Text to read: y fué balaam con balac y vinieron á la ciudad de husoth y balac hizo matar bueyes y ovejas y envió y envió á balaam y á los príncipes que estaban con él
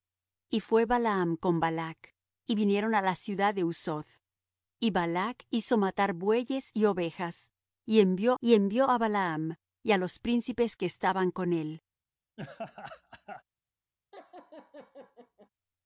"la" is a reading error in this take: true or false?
false